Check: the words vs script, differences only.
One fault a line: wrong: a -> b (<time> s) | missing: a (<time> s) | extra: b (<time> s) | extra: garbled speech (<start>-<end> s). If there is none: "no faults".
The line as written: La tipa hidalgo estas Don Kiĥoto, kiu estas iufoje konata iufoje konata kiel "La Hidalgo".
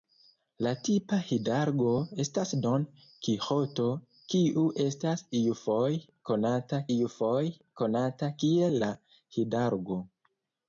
no faults